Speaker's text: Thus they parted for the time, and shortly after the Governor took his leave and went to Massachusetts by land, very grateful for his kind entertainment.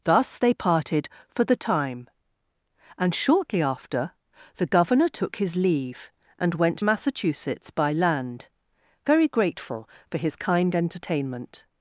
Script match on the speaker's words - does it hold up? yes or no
no